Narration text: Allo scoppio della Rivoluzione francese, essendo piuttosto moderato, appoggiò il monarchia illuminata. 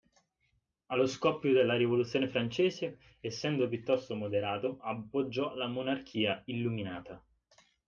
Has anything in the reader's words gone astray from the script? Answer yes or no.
yes